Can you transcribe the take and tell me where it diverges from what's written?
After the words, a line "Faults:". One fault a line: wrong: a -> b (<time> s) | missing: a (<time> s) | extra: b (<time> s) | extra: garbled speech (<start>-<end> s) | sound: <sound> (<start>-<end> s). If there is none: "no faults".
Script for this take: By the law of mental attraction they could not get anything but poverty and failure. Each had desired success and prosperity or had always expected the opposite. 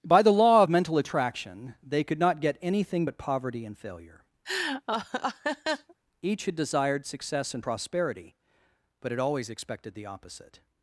By the law of mental attraction they could not get anything but poverty and failure. Each had desired success and prosperity but had always expected the opposite.
Faults:
sound: laugh (4.4-5.9 s)
wrong: or -> but (9.0 s)